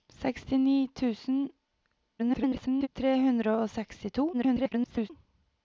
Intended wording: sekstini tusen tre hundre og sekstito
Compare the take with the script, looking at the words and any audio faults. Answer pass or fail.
fail